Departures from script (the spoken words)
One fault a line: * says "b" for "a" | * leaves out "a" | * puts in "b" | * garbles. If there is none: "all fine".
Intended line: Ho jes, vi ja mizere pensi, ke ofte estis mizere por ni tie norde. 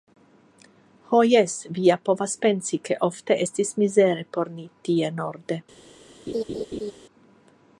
* says "povas" for "mizere"